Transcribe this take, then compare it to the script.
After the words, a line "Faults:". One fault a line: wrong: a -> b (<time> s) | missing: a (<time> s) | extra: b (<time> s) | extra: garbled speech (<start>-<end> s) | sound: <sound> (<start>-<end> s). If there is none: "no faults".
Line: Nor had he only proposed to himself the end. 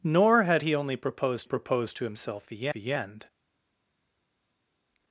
Nor had he only proposed proposed to himself the the end.
Faults:
extra: proposed (1.4 s)
extra: the (2.7 s)